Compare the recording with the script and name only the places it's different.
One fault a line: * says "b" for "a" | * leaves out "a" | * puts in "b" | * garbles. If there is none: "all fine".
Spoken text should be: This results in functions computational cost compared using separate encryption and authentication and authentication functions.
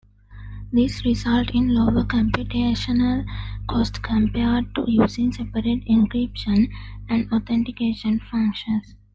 * says "lower" for "functions"
* puts in "to"
* leaves out "and authentication"